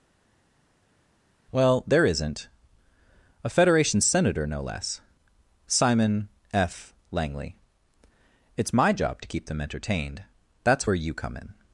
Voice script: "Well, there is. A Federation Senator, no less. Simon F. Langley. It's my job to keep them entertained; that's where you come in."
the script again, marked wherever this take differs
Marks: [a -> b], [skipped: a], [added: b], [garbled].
"Well, there [is. -> isn't] A Federation Senator, no less. Simon F. Langley. It's my job to keep them entertained; that's where you come in."